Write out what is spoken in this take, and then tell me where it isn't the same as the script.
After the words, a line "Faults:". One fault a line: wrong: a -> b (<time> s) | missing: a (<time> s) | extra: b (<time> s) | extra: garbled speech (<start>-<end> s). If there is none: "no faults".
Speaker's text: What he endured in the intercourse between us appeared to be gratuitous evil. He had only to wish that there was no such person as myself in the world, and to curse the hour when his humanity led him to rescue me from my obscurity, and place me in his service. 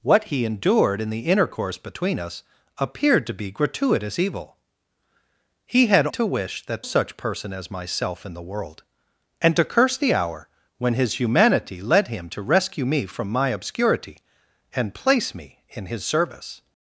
What he endured in the intercourse between us appeared to be gratuitous evil. He had to wish that such person as myself in the world, and to curse the hour when his humanity led him to rescue me from my obscurity, and place me in his service.
Faults:
missing: only (6.1 s)
missing: there was no (6.8 s)